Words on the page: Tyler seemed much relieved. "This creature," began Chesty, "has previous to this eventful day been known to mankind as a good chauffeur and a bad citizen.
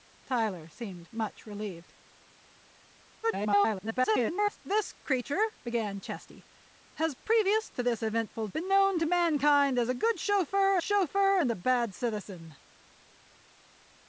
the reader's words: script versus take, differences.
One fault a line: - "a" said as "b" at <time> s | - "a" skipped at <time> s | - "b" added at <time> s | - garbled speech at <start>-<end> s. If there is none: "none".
- garbled speech at 3.2-4.6 s
- "day" skipped at 8.5 s
- "chauffeur" added at 10.8 s